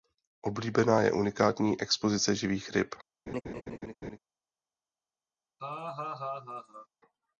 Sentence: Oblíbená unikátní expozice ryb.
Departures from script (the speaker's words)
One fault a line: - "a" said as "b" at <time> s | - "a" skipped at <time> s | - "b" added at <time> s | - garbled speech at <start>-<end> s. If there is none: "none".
- "je" added at 1.0 s
- "živých" added at 2.4 s